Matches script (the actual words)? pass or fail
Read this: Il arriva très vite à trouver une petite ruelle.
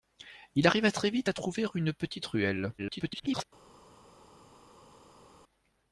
fail